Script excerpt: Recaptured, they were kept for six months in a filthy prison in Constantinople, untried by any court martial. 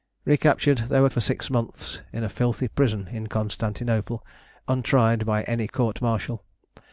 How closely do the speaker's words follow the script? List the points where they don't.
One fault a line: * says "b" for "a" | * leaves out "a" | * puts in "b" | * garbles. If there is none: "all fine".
* leaves out "kept"